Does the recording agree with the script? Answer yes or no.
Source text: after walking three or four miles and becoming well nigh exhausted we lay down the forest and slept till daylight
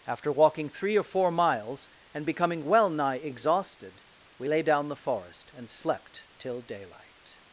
yes